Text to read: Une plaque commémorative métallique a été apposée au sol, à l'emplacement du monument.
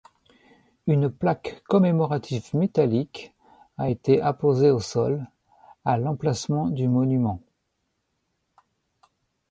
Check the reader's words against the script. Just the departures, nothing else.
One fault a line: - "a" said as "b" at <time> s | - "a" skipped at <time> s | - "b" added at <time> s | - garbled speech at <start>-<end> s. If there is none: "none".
none